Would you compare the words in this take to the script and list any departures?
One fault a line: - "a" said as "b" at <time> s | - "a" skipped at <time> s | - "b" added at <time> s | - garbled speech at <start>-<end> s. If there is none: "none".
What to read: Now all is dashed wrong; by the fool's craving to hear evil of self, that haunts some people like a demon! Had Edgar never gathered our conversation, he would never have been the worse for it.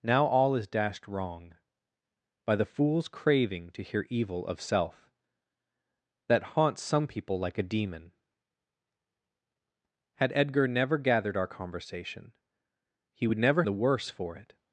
- "have been" skipped at 13.6 s